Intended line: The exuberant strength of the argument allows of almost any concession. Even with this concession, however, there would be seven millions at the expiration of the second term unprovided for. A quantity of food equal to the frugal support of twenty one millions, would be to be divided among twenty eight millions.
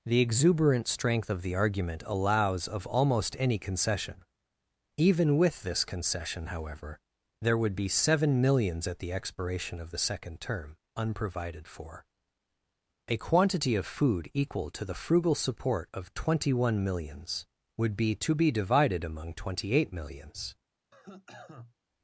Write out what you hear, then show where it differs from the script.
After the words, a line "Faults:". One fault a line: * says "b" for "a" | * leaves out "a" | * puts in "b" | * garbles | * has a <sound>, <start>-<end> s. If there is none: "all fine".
The exuberant strength of the argument allows of almost any concession. Even with this concession, however, there would be seven millions at the expiration of the second term unprovided for. A quantity of food equal to the frugal support of twenty one millions, would be to be divided among twenty eight millions.
Faults:
* has a cough, 20.9-21.7 s